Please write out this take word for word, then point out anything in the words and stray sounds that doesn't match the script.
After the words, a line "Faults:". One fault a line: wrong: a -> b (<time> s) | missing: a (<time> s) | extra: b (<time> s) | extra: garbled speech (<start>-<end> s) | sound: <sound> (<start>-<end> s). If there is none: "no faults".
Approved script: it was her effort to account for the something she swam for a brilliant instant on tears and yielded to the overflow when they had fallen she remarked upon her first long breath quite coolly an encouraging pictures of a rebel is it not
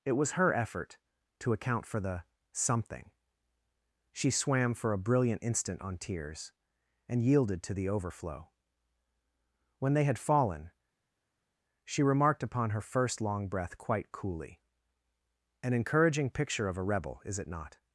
it was her effort to account for the something she swam for a brilliant instant on tears and yielded to the overflow when they had fallen she remarked upon her first long breath quite coolly an encouraging picture of a rebel is it not
Faults:
wrong: pictures -> picture (16.3 s)